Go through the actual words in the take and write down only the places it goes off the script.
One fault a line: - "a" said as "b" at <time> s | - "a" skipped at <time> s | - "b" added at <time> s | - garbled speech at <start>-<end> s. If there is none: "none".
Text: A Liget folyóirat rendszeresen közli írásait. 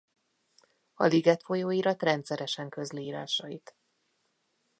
none